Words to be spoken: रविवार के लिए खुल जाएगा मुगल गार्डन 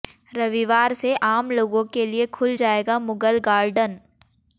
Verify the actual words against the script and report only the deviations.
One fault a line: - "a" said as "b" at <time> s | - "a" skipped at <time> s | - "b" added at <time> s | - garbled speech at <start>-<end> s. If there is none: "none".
- "से आम लोगों" added at 0.9 s